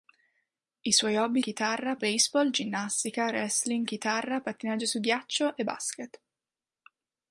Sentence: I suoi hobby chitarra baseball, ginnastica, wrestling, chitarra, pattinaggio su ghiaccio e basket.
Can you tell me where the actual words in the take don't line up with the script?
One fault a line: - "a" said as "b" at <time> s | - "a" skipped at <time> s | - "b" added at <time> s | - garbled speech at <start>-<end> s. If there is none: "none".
none